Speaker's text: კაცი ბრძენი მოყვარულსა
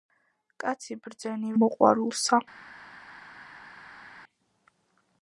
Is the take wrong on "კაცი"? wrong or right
right